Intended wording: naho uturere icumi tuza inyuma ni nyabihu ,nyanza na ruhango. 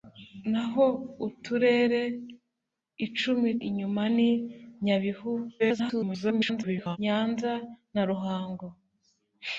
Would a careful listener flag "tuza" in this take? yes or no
yes